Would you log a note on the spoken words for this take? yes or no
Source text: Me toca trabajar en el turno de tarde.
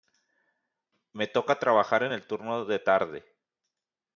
no